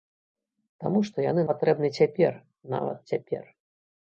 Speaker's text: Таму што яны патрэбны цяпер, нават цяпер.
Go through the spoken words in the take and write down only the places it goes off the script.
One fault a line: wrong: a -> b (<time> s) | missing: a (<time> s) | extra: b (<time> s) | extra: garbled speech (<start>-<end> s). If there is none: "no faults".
no faults